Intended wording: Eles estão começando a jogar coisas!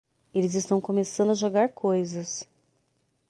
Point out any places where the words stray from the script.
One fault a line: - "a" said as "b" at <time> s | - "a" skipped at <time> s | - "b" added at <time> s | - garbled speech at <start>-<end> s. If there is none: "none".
none